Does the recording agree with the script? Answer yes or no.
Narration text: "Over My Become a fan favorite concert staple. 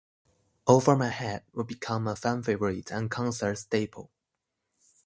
no